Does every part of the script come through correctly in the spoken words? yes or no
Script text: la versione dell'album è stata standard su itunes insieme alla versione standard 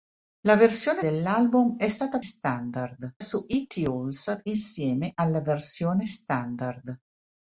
yes